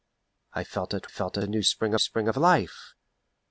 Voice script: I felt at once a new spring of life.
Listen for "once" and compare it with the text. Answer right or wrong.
wrong